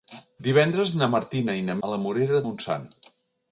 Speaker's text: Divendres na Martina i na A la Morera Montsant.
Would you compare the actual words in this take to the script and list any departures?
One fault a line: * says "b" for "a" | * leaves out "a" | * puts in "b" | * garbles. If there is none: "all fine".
all fine